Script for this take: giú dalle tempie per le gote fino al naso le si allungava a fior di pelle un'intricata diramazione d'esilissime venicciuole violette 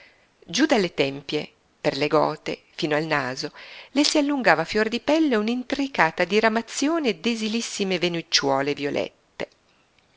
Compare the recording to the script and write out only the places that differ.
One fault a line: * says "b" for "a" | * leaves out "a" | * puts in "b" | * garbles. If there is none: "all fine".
all fine